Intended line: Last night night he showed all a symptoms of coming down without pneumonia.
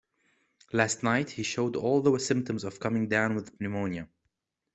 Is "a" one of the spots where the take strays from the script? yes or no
yes